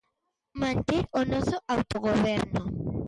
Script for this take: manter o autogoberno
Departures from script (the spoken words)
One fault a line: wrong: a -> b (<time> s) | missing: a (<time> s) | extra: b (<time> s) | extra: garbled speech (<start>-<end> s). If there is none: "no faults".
extra: noso (1.3 s)